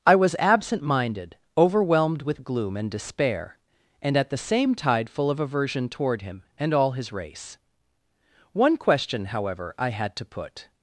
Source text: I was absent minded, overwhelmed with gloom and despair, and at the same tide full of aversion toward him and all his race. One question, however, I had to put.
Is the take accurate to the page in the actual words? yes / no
yes